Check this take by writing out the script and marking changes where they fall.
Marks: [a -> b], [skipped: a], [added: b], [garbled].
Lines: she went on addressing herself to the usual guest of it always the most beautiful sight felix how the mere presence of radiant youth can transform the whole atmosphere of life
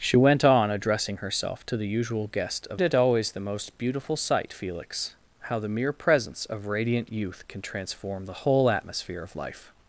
she went on addressing herself to the usual guest of it always the most beautiful sight felix how the mere presence of radiant youth can transform the whole atmosphere of life